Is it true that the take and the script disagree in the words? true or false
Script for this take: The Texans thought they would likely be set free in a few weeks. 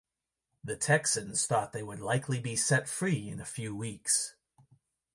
false